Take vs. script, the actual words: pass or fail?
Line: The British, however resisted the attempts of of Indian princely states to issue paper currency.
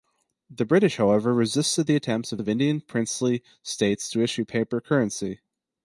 pass